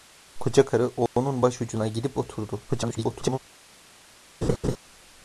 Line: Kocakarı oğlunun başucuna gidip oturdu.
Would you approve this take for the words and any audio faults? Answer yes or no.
no